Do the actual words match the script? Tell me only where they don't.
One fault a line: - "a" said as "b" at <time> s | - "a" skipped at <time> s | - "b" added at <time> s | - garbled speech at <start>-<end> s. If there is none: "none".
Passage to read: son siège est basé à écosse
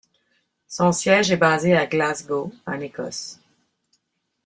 - "glasgow en" added at 1.9 s